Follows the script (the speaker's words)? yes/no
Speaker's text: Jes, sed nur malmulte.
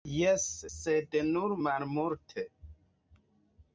yes